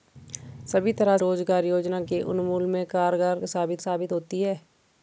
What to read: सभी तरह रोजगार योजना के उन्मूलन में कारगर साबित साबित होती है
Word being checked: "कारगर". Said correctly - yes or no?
yes